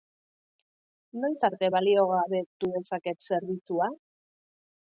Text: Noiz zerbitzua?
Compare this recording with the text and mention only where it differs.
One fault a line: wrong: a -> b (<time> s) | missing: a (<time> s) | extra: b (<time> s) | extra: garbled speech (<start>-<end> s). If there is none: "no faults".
extra: arte baliogabetu dezaket (1.5 s)